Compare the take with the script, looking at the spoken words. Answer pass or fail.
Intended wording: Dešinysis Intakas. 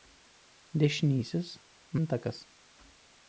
pass